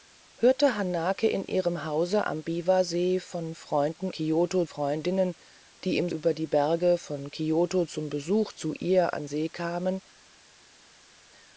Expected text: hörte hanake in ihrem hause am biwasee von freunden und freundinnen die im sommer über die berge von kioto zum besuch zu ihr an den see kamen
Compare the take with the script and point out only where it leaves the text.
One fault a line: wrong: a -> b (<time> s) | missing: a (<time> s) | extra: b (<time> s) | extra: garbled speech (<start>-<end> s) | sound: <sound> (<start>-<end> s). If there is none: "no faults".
wrong: und -> kioto (4.1 s)
missing: sommer (6.1 s)
missing: den (9.3 s)